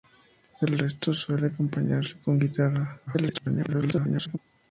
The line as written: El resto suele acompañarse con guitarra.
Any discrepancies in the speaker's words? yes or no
yes